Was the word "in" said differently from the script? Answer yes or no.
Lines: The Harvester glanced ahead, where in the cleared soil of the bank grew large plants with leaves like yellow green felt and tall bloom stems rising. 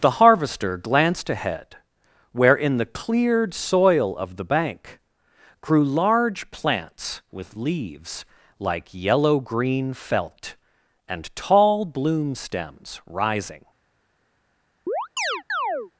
no